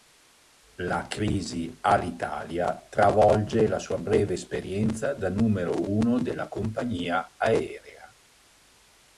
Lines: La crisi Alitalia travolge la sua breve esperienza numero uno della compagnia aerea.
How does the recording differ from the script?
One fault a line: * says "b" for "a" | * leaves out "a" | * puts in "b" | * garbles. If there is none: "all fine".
* puts in "da"